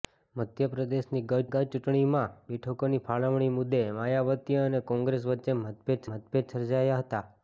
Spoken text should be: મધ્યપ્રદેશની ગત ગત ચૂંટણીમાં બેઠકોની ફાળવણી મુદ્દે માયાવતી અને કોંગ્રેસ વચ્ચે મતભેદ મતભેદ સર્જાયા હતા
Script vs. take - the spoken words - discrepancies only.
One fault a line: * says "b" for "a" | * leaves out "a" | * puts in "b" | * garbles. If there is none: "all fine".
all fine